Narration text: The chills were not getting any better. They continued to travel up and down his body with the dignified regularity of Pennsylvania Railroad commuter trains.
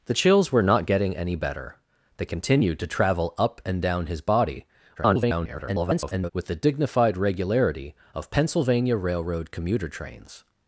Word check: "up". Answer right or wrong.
right